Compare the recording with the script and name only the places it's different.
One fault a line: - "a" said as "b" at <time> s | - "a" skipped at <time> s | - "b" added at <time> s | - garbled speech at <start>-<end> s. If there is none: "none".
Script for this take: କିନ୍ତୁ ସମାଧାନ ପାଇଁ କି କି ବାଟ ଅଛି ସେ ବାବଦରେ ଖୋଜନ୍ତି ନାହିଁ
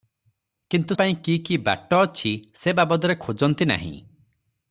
- "ସମାଧାନ" skipped at 0.9 s